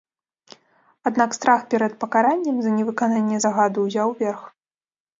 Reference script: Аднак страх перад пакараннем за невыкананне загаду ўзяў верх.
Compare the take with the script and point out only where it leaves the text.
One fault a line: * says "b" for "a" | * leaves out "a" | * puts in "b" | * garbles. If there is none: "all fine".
all fine